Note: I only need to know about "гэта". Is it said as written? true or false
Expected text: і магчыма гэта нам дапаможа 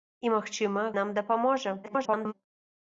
false